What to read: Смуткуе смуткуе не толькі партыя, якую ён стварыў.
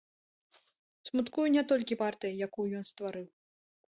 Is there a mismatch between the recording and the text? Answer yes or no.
yes